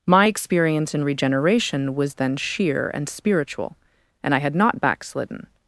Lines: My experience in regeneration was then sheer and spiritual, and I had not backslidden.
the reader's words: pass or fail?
pass